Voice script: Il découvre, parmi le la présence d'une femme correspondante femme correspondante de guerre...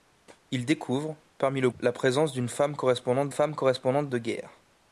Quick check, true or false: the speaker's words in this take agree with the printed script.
true